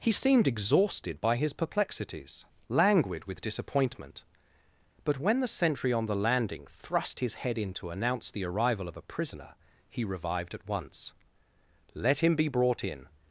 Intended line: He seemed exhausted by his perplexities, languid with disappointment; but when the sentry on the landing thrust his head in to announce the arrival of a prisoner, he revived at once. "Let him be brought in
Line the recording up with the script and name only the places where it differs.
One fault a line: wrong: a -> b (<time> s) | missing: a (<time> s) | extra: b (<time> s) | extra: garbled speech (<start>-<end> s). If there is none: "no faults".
no faults